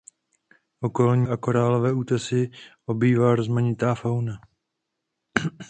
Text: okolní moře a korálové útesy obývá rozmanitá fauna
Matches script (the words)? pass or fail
fail